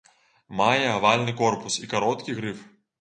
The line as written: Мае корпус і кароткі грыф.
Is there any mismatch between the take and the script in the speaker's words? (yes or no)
yes